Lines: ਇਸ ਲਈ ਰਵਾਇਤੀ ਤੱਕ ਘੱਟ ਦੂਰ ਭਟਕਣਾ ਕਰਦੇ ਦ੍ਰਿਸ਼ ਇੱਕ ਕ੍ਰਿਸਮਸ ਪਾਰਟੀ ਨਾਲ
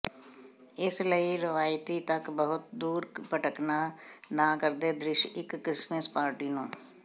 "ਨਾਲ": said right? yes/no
no